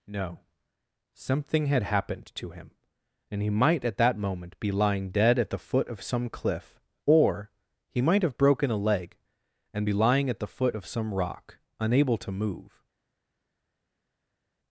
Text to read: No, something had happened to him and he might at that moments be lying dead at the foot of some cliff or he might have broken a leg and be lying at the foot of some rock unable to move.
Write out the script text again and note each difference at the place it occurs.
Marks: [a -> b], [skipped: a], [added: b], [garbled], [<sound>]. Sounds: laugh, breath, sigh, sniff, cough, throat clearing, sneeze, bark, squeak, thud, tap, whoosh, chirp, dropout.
No, something had happened to him and he might at that [moments -> moment] be lying dead at the foot of some cliff or he might have broken a leg and be lying at the foot of some rock unable to move.